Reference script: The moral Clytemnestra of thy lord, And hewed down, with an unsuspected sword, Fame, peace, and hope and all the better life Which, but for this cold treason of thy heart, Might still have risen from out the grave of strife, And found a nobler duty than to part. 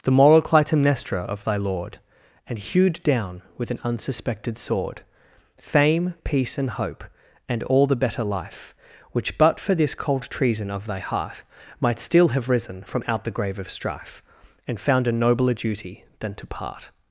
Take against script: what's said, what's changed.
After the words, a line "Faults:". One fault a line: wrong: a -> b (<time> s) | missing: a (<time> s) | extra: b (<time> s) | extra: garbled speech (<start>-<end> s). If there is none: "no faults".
The moral Clytemnestra of thy lord, And hewed down, with an unsuspected sword, Fame, peace, and hope and all the better life Which, but for this cold treason of thy heart, Might still have risen from out the grave of strife, And found a nobler duty than to part.
Faults:
no faults